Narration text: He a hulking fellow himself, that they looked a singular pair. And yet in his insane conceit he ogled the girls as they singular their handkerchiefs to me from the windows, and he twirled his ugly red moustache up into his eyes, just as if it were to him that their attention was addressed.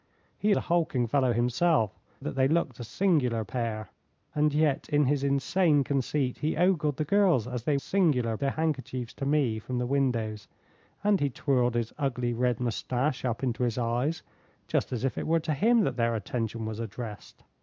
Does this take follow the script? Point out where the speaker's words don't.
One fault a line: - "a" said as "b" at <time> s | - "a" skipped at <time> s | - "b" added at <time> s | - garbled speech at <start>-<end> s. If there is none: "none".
none